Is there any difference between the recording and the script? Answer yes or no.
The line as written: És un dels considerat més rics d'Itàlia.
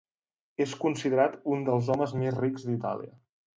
yes